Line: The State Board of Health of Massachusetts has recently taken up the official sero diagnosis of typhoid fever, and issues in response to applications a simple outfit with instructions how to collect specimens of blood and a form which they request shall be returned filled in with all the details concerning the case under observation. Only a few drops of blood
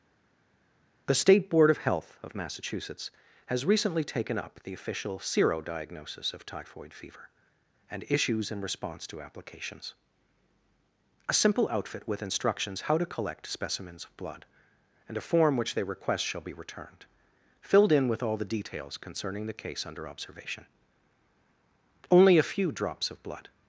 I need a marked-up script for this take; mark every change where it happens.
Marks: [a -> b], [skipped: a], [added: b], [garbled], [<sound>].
The State Board of Health of Massachusetts has recently taken up the official sero diagnosis of typhoid fever, and issues in response to applications a simple outfit with instructions how to collect specimens of blood and a form which they request shall be returned filled in with all the details concerning the case under observation. Only a few drops of blood